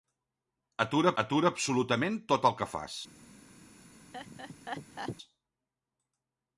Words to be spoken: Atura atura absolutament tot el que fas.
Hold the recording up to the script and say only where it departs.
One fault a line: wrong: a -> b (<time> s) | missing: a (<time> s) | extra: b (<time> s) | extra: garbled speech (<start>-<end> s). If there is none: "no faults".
no faults